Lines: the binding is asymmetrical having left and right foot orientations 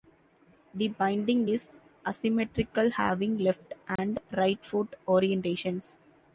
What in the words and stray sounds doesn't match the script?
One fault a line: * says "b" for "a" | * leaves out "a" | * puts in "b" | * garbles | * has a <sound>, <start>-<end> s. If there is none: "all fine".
* has a dropout, 4.0-4.0 s